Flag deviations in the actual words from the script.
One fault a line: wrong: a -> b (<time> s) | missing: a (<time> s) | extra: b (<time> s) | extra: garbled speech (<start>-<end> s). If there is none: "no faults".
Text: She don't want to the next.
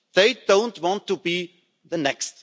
wrong: She -> They (0.1 s)
extra: be (1.2 s)